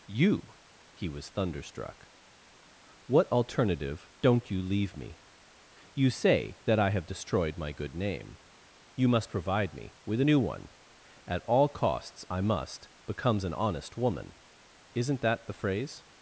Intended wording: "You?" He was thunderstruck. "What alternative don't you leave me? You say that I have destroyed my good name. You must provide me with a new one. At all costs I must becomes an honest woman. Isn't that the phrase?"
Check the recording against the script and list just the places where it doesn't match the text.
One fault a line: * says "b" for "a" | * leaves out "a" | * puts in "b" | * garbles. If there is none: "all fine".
all fine